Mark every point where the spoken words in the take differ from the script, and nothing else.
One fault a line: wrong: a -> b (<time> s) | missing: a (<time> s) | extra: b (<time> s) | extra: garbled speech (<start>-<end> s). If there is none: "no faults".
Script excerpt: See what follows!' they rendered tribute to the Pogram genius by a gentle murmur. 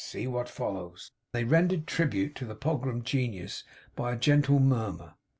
no faults